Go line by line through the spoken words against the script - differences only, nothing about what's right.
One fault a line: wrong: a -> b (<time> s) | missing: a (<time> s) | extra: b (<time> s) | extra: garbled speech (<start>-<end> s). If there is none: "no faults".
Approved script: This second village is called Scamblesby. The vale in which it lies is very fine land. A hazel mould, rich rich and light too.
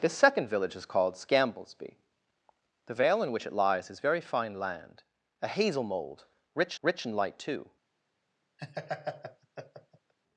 no faults